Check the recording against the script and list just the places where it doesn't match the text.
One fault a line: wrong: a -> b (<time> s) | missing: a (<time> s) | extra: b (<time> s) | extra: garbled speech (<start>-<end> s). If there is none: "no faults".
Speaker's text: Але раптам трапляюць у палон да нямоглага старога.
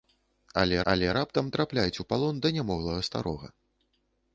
extra: але (0.9 s)